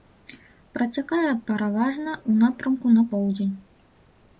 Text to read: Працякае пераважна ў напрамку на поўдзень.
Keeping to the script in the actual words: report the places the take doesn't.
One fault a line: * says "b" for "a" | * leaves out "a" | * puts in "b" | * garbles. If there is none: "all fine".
all fine